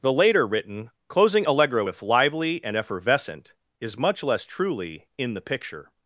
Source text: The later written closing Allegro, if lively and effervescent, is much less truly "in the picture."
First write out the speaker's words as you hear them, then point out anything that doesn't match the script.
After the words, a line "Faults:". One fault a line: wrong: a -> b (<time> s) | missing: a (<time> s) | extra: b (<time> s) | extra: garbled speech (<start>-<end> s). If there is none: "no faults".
The later written closing Allegro, if lively and effervescent, is much less truly "in the picture."
Faults:
no faults